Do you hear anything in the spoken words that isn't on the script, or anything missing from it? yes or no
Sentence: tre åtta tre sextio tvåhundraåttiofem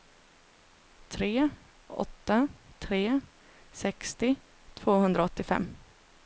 no